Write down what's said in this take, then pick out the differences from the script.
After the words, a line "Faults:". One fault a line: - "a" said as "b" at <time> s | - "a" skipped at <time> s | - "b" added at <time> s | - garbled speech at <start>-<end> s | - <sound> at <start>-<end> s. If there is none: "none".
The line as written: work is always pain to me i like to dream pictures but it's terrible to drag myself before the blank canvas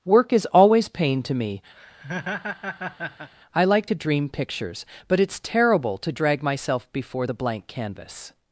work is always pain to me i like to dream pictures but it's terrible to drag myself before the blank canvas
Faults:
- laugh at 1.8-3.3 s